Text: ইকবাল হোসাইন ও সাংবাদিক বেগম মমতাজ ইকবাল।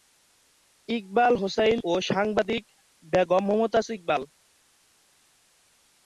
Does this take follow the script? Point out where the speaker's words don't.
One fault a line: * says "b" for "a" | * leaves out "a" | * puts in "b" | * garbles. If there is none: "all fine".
all fine